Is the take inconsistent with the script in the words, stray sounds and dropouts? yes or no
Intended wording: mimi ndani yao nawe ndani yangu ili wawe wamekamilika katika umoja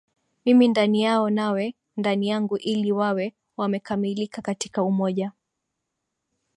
no